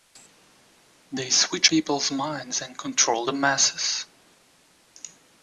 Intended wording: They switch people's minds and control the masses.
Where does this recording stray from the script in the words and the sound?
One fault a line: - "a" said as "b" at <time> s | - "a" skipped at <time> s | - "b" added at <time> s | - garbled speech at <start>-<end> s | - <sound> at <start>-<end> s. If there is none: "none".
none